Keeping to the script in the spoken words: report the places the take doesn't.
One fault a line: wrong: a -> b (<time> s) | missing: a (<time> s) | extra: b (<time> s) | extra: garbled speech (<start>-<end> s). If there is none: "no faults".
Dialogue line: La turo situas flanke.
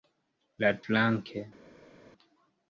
missing: turo situas (0.7 s)